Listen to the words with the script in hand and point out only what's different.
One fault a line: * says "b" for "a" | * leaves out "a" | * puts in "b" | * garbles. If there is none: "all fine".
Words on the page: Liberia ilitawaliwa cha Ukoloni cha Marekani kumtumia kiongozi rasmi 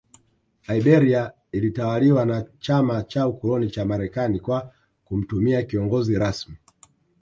* puts in "na Chama"
* puts in "kwa"